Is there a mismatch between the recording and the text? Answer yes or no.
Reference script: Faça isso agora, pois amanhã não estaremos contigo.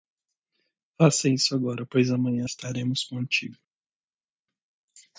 yes